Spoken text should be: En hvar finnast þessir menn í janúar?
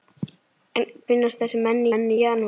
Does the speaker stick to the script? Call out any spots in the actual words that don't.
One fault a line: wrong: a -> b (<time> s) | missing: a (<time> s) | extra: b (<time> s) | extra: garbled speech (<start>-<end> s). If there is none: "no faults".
missing: hvar (0.9 s)
extra: menn (1.9 s)